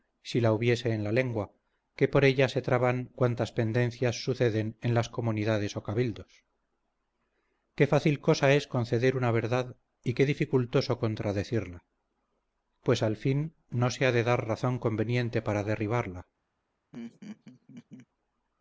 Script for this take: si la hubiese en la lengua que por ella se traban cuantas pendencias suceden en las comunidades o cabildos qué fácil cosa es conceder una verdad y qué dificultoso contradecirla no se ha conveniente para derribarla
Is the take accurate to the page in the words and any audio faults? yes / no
no